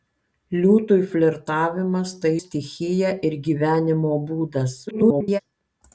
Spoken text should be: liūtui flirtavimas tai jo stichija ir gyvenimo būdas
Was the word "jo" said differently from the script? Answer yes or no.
yes